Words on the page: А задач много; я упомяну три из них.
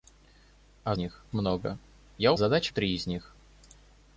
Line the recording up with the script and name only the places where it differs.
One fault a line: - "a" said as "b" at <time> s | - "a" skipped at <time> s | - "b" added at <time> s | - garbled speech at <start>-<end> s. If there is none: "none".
- "задач" said as "них" at 0.9 s
- "упомяну" said as "задач" at 2.3 s